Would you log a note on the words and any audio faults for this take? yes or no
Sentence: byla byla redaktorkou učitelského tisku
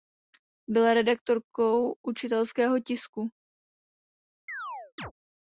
yes